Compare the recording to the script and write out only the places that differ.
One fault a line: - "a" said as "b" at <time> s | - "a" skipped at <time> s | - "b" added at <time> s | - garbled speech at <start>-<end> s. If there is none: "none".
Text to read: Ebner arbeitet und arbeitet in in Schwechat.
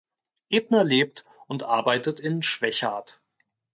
- "arbeitet" said as "lebt" at 0.8 s
- "in" skipped at 2.4 s